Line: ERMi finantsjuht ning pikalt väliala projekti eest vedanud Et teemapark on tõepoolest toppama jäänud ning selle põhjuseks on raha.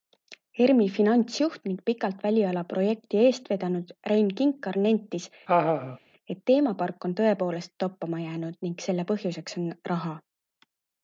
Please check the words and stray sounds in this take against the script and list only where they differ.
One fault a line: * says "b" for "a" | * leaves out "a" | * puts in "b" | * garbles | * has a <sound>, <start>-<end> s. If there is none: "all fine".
* puts in "Rein Kinkar nentis"
* has a laugh, 5.5-6.0 s